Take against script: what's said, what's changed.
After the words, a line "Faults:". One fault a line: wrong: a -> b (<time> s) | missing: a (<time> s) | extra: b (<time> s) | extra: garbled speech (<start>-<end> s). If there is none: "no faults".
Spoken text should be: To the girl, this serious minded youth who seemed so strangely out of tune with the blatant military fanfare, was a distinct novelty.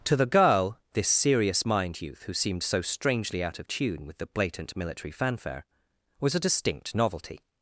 To the girl, this serious mind youth who seemed so strangely out of tune with the blatant military fanfare, was a distinct novelty.
Faults:
wrong: minded -> mind (1.6 s)